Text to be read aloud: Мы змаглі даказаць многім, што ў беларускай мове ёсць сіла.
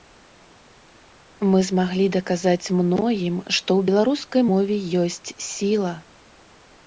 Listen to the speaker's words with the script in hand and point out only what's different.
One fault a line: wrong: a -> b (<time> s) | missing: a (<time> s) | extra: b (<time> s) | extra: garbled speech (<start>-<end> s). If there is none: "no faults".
no faults